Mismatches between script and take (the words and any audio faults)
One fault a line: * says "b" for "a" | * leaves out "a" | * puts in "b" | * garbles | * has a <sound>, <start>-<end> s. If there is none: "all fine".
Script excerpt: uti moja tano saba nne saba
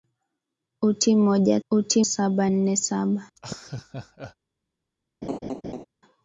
* says "uti" for "tano"
* has a laugh, 3.4-4.4 s
* has a laugh, 5.2-5.9 s